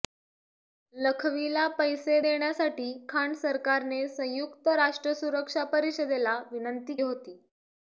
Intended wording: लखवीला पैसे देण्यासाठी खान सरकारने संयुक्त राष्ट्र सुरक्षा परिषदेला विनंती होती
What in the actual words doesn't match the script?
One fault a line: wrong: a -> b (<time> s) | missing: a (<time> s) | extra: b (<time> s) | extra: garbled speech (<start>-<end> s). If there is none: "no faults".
no faults